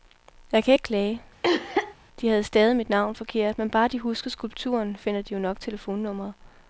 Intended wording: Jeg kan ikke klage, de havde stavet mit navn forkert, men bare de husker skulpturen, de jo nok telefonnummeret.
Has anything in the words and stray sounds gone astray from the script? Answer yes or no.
yes